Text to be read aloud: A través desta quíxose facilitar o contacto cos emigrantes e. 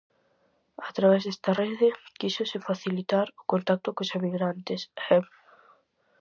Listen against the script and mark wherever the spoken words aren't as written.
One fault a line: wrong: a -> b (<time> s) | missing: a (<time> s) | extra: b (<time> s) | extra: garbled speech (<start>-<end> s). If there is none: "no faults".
extra: rede (1.6 s)